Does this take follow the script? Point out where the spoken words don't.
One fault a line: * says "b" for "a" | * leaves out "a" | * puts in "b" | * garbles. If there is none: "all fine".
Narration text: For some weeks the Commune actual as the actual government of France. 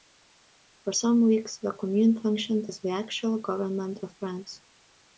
* says "functioned" for "actual"